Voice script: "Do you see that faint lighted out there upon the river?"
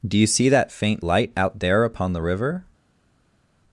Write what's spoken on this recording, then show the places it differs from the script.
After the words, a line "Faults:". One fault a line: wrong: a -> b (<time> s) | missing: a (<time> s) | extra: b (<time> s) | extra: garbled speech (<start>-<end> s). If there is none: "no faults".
"Do you see that faint light out there upon the river?"
Faults:
wrong: lighted -> light (1.0 s)